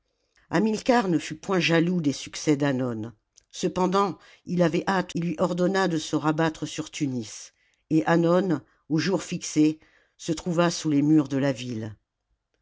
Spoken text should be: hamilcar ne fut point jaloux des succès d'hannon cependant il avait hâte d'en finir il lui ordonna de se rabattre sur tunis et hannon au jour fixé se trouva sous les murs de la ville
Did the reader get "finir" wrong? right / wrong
wrong